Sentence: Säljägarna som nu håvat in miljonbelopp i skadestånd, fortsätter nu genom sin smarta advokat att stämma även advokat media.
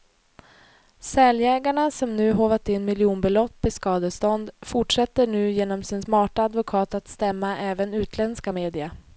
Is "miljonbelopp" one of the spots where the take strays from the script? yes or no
no